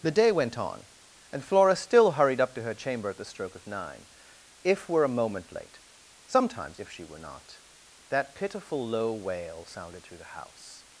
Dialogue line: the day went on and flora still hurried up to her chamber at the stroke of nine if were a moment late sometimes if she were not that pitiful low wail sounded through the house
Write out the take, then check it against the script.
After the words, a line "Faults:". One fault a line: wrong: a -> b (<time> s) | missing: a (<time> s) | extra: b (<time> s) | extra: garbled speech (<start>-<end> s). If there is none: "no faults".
the day went on and flora still hurried up to her chamber at the stroke of nine if were a moment late sometimes if she were not that pitiful low wail sounded through the house
Faults:
no faults